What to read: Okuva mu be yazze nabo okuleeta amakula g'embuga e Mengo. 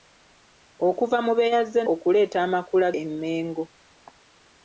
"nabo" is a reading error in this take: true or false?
true